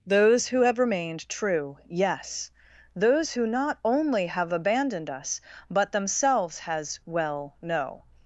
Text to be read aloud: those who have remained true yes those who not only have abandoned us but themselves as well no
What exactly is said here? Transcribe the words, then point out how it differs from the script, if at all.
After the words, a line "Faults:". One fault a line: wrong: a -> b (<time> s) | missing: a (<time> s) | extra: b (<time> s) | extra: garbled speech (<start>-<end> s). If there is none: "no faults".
those who have remained true yes those who not only have abandoned us but themselves has well no
Faults:
wrong: as -> has (6.6 s)